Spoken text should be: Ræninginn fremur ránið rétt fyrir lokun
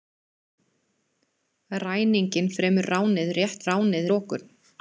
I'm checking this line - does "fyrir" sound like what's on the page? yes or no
no